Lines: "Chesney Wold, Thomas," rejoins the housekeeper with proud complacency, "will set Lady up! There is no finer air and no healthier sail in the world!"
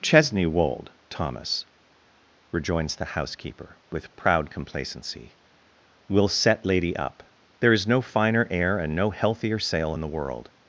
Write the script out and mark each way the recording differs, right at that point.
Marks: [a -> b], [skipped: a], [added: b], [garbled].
"Chesney Wold, Thomas," rejoins the housekeeper with proud complacency, "will set Lady up! There is no finer air and no healthier sail in the world!"